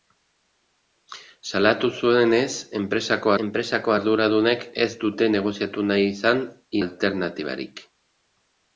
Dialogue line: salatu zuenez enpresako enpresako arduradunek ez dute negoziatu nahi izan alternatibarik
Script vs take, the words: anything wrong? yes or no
no